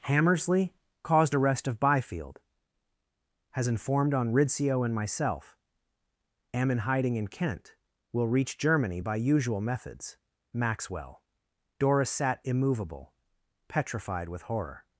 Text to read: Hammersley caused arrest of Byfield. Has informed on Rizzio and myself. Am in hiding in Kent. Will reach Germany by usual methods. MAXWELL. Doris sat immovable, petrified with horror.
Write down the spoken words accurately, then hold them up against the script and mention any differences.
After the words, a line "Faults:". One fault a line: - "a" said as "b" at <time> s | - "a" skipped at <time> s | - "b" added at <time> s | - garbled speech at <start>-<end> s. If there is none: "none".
Hammersley caused arrest of Byfield. Has informed on Rizzio and myself. Am in hiding in Kent. Will reach Germany by usual methods. MAXWELL. Doris sat immovable, petrified with horror.
Faults:
none